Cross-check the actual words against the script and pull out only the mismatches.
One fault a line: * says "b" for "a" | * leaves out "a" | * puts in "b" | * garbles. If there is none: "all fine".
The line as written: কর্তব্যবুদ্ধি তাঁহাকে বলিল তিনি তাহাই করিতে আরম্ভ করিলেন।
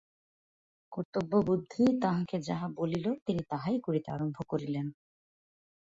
* puts in "যাহা"